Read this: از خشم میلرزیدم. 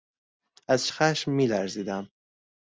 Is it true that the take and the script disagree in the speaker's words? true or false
false